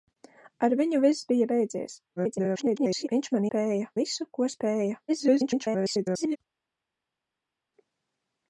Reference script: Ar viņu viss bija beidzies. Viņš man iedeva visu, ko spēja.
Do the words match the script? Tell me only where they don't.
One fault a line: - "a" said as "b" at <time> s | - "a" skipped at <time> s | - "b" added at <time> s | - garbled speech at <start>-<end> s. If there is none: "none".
- garbled speech at 2.2-3.1 s
- "iedeva" said as "spēja" at 3.5 s
- garbled speech at 5.1-6.4 s